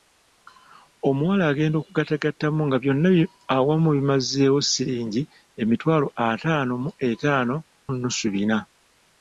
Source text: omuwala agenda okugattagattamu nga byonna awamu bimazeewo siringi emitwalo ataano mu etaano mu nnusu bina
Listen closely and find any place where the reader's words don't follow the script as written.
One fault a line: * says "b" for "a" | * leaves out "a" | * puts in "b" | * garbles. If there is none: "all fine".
* leaves out "mu"